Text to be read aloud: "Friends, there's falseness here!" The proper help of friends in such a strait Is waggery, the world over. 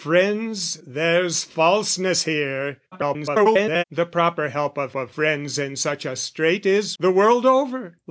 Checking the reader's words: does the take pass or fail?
fail